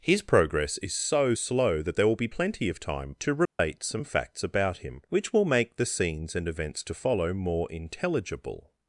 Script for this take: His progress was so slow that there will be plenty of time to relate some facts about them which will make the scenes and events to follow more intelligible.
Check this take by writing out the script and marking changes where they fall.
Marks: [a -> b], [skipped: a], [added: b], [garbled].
His progress [was -> is] so slow that there will be plenty of time to relate some facts about [them -> him] which will make the scenes and events to follow more intelligible.